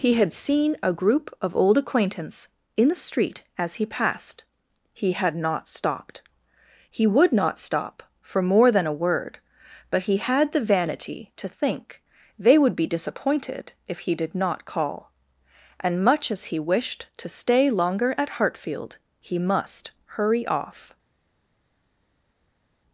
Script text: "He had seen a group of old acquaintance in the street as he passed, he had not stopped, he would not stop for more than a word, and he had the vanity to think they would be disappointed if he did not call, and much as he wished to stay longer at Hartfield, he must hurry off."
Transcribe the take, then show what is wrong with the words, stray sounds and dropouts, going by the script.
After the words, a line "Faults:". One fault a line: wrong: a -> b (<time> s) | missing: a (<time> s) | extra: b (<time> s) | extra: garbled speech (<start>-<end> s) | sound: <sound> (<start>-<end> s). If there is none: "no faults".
"He had seen a group of old acquaintance in the street as he passed, he had not stopped, he would not stop for more than a word, but he had the vanity to think they would be disappointed if he did not call, and much as he wished to stay longer at Hartfield, he must hurry off."
Faults:
wrong: and -> but (9.9 s)